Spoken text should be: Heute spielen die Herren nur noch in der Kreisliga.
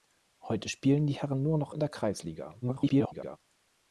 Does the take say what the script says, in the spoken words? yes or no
no